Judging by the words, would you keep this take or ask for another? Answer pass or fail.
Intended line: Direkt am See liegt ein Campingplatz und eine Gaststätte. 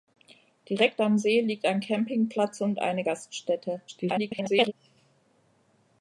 fail